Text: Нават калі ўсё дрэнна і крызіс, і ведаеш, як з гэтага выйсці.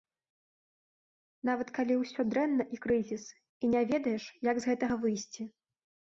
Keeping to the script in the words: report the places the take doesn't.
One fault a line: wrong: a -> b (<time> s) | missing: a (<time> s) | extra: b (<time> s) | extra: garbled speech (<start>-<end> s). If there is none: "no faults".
extra: не (3.7 s)